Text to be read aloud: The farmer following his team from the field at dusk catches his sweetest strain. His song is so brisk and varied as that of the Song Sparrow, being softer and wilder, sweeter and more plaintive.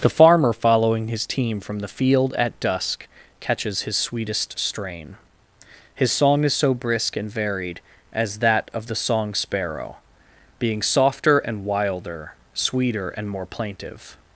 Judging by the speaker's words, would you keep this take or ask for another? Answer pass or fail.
pass